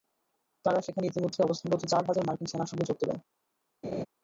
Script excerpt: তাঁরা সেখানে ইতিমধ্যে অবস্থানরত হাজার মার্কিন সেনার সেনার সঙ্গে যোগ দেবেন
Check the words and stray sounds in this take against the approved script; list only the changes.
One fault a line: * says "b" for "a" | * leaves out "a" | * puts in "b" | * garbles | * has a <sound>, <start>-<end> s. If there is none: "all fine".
* puts in "চার"
* leaves out "সেনার"
* has a laugh, 3.8-4.1 s